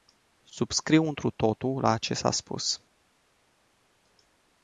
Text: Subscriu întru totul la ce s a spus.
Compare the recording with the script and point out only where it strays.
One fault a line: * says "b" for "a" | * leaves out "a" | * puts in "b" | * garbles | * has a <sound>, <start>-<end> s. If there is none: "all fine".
all fine